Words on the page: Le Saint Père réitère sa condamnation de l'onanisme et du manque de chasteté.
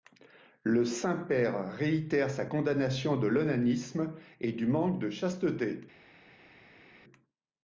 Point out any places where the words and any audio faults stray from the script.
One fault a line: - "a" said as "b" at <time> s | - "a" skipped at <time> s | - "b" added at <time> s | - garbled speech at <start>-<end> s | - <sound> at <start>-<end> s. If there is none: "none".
none